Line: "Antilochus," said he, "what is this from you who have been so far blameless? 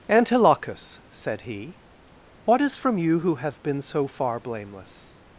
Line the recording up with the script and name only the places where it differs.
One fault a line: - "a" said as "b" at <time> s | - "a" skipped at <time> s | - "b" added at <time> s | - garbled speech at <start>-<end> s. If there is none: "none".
- "this" skipped at 2.8 s